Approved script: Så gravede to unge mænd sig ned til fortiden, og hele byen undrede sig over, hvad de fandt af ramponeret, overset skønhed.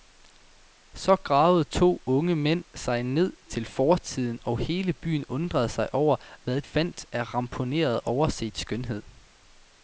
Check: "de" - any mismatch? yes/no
yes